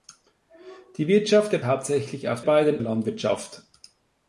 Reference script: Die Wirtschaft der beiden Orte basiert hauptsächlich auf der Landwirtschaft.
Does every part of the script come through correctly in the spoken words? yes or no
no